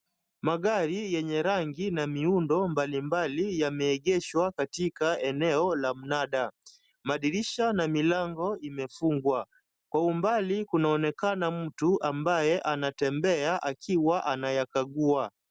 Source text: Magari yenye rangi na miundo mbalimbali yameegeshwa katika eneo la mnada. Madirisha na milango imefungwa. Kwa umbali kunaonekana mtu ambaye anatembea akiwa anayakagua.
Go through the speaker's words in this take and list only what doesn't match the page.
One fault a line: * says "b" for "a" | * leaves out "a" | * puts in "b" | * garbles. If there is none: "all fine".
all fine